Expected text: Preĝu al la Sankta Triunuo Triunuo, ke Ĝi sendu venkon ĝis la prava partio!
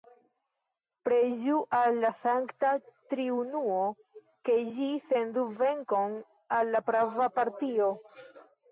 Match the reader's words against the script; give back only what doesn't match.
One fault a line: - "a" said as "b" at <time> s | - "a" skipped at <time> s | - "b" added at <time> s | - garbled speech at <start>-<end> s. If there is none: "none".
- "Triunuo" skipped at 3.8 s
- "ĝis" said as "al" at 6.6 s